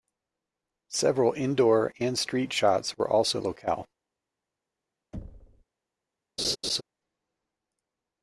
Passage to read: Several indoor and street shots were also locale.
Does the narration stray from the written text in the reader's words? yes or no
no